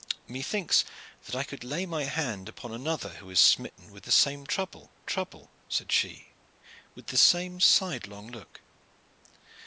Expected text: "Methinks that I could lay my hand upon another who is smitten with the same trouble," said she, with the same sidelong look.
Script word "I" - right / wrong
right